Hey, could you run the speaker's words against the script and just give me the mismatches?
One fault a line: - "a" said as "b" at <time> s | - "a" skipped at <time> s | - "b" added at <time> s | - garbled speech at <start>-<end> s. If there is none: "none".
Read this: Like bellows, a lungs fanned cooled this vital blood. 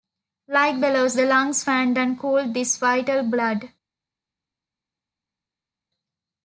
- "a" said as "the" at 1.2 s
- "and" added at 2.0 s